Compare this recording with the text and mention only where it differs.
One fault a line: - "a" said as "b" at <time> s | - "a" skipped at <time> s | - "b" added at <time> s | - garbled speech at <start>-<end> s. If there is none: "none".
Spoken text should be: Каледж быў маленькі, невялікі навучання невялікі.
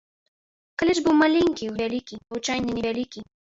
none